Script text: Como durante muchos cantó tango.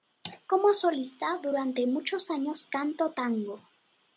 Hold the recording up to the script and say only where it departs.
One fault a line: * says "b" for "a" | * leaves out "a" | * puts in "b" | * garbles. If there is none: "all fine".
* puts in "solista"
* puts in "años"